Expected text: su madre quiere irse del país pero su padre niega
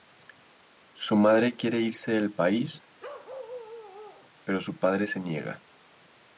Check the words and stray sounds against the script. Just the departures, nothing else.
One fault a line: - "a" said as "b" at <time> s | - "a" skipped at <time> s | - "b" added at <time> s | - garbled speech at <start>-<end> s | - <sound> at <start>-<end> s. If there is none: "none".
- bark at 3.0-4.3 s
- "se" added at 5.1 s